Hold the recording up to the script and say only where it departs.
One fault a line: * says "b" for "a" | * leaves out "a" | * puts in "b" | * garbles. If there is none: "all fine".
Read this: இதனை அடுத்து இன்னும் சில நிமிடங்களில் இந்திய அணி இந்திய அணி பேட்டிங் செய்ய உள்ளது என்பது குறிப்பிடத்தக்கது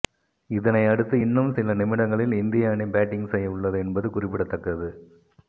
* leaves out "இந்திய அணி"